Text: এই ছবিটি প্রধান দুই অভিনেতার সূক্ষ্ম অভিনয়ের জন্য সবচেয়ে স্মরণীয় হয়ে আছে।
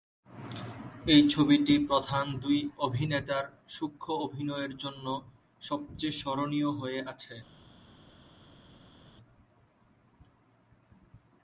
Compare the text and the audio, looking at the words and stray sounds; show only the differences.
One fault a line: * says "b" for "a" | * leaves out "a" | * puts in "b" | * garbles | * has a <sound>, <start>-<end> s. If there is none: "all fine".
all fine